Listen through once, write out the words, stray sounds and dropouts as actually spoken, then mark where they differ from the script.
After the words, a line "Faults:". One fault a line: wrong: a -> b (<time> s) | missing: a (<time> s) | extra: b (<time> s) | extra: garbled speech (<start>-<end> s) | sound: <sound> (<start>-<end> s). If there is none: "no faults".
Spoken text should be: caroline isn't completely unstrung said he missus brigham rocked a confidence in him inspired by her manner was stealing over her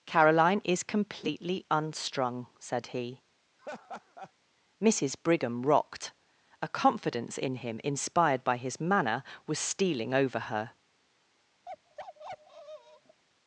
caroline is completely unstrung said he missus brigham rocked a confidence in him inspired by his manner was stealing over her
Faults:
wrong: isn't -> is (0.6 s)
sound: laugh (3.6-4.3 s)
wrong: her -> his (8.6 s)
sound: bark (11.7-13.2 s)